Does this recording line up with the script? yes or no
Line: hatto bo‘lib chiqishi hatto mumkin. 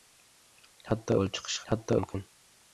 yes